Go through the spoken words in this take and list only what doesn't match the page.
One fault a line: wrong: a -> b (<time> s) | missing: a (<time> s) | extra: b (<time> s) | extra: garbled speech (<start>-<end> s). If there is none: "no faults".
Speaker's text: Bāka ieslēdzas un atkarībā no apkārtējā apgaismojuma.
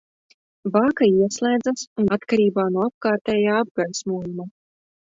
no faults